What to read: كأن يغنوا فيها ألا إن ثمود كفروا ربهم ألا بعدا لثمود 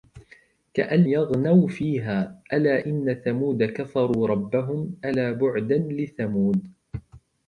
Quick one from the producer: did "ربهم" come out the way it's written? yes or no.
yes